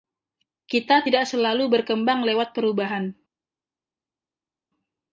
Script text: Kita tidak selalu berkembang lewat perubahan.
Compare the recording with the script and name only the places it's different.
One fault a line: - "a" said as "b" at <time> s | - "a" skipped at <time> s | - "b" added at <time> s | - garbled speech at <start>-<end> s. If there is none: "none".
none